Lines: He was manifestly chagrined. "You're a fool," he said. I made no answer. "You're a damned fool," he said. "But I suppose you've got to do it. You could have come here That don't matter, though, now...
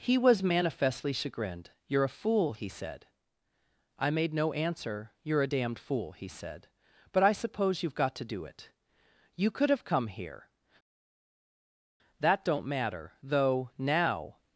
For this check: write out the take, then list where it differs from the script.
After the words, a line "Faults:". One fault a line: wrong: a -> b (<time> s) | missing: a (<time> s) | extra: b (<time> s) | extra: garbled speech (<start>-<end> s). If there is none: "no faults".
He was manifestly chagrined. "You're a fool," he said. I made no answer. "You're a damned fool," he said. "But I suppose you've got to do it. You could have come here That don't matter, though, now...
Faults:
no faults